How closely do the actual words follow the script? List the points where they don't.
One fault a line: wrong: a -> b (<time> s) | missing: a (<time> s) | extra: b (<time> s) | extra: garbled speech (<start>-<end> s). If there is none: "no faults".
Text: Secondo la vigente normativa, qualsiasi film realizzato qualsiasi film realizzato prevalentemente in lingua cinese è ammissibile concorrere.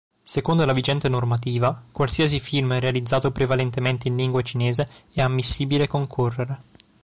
missing: qualsiasi film realizzato (3.3 s)